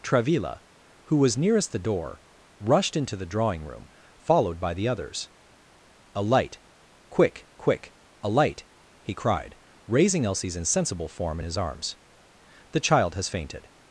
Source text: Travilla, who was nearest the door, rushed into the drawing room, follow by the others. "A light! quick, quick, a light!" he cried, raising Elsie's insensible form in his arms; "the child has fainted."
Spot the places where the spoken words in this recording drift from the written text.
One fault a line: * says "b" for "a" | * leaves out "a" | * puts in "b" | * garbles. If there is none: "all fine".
* says "followed" for "follow"